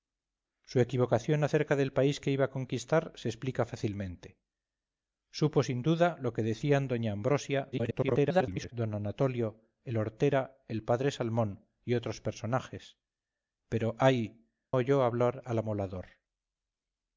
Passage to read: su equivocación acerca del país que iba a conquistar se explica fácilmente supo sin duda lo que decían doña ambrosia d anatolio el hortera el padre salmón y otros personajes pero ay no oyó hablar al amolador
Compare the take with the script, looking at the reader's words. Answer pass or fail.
fail